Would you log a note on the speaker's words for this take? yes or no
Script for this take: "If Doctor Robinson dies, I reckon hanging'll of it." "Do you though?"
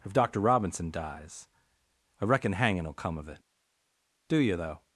yes